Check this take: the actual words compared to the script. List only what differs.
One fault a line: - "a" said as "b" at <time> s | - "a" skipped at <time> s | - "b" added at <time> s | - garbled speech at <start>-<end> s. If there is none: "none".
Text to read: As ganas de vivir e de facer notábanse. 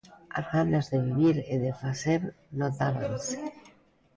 none